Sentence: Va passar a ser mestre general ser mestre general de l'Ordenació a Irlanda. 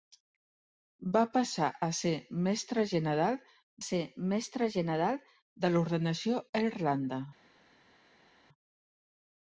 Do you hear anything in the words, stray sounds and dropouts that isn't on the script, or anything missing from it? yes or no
no